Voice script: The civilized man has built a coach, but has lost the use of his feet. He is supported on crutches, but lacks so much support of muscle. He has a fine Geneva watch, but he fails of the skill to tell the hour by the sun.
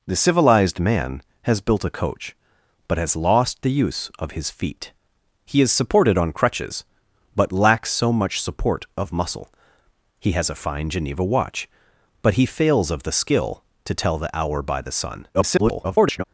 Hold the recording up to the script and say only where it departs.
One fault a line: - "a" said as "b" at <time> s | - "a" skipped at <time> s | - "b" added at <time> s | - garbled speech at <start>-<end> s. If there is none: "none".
- garbled speech at 15.3-16.2 s